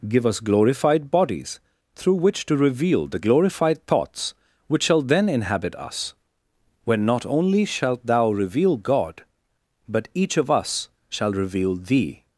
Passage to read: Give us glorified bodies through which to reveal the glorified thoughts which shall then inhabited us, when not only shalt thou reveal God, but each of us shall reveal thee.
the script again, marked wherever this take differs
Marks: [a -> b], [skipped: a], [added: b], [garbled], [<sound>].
Give us glorified bodies through which to reveal the glorified thoughts which shall then [inhabited -> inhabit] us, when not only shalt thou reveal God, but each of us shall reveal thee.